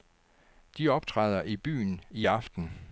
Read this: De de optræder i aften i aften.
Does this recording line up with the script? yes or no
no